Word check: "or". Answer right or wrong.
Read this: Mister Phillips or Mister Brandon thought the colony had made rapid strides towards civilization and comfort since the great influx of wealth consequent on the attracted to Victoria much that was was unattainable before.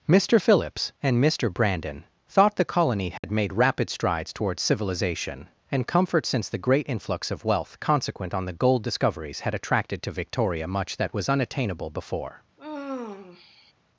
wrong